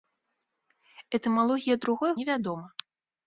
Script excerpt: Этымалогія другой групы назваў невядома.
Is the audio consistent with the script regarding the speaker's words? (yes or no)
no